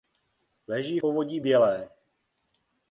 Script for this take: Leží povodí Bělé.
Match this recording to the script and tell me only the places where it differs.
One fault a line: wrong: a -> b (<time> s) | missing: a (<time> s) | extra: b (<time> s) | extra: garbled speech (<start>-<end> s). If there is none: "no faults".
no faults